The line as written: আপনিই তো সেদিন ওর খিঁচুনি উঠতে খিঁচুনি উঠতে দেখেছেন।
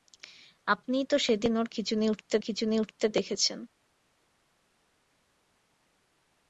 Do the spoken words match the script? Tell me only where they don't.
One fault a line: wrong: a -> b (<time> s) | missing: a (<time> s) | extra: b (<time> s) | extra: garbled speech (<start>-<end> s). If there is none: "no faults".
no faults